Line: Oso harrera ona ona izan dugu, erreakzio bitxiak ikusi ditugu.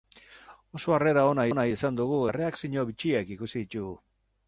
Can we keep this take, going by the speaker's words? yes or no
yes